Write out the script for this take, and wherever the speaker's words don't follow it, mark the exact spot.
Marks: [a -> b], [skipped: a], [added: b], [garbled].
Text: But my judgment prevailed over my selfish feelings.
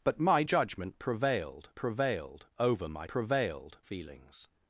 But my judgment prevailed [added: prevailed] over my [selfish -> prevailed] feelings.